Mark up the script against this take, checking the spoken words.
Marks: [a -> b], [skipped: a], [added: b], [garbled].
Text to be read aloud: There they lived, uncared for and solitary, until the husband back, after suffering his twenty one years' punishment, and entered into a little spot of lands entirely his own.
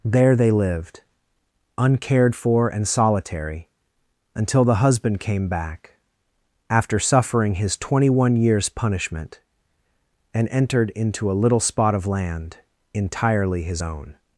There they lived, uncared for and solitary, until the husband [added: came] back, after suffering his twenty one years' punishment, and entered into a little spot of [lands -> land] entirely his own.